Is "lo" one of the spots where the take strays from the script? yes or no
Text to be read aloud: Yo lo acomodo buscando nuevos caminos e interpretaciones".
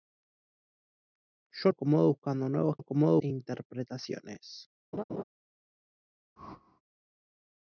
yes